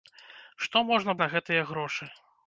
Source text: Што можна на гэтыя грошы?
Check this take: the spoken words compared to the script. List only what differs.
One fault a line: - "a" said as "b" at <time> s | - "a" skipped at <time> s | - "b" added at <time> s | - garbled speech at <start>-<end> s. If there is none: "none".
none